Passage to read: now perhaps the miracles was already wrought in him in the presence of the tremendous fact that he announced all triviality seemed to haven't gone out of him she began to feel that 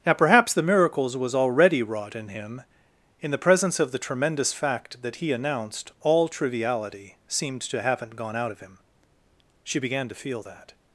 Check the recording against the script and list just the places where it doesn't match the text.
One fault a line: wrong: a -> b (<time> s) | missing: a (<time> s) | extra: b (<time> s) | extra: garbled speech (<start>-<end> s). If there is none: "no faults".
no faults